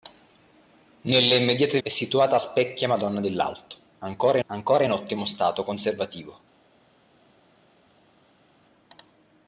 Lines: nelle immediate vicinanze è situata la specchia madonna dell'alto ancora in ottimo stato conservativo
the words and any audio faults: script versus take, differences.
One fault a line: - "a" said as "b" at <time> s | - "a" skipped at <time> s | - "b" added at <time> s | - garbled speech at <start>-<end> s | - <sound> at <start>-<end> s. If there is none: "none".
- "vicinanze" skipped at 1.8 s
- "la" skipped at 2.4 s
- "ancora" added at 4.5 s